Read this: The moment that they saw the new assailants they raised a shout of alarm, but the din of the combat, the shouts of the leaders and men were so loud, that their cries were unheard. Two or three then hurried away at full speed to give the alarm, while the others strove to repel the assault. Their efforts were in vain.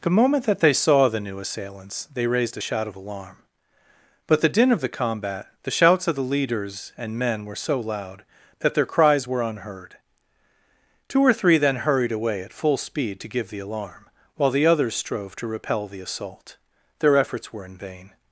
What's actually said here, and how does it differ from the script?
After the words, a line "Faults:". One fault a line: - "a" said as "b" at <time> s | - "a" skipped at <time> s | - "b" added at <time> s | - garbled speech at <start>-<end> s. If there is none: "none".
The moment that they saw the new assailants they raised a shout of alarm, but the din of the combat, the shouts of the leaders and men were so loud, that their cries were unheard. Two or three then hurried away at full speed to give the alarm, while the others strove to repel the assault. Their efforts were in vain.
Faults:
none